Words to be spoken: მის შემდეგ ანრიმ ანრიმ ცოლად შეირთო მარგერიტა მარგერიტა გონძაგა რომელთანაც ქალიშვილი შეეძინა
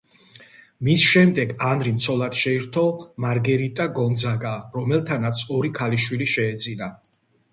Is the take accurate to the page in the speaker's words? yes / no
no